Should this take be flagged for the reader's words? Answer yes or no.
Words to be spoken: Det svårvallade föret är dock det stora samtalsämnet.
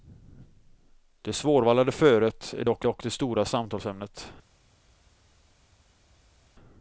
yes